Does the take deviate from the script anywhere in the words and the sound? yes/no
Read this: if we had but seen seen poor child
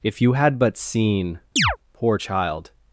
yes